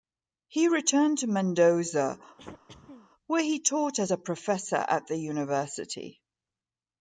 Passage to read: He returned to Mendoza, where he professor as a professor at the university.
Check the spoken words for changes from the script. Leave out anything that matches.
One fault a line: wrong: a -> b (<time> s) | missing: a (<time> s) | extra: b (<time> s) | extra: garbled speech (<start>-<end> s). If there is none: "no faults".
wrong: professor -> taught (3.6 s)